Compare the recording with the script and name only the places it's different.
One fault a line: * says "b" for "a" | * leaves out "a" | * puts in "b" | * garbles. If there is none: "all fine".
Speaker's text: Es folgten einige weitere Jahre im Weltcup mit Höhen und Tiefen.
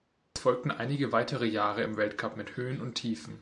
all fine